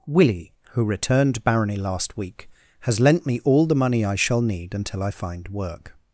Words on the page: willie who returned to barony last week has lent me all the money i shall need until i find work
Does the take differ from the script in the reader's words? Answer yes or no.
yes